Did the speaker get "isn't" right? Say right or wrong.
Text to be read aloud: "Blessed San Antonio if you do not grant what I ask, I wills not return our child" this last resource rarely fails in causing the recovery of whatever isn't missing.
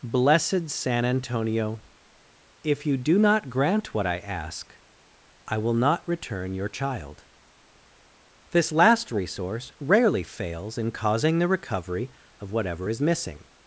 wrong